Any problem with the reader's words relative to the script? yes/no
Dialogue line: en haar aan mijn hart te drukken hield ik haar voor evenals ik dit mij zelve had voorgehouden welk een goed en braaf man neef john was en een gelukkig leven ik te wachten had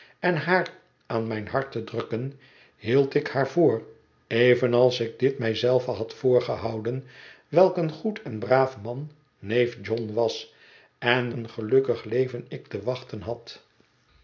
no